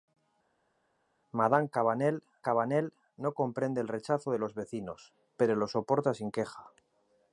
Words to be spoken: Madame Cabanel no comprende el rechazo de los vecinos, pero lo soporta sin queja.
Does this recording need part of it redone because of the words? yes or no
yes